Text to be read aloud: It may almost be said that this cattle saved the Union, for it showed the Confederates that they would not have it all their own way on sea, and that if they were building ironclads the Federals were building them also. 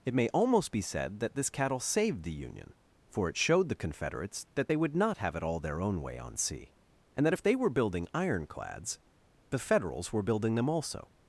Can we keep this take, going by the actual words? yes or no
yes